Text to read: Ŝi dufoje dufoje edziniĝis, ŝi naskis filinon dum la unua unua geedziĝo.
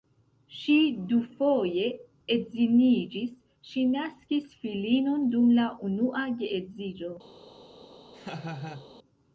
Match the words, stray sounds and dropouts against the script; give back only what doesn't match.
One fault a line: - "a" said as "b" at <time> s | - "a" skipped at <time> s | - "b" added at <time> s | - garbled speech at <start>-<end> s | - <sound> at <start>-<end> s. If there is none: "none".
- "dufoje" skipped at 1.8 s
- "unua" skipped at 6.3 s
- laugh at 8.1-8.9 s